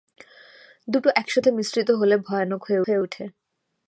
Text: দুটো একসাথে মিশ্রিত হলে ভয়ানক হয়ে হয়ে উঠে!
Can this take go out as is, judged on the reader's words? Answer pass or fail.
pass